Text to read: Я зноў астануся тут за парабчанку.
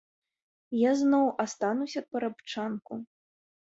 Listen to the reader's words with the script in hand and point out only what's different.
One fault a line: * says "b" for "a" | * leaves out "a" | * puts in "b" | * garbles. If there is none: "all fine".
* leaves out "тут за"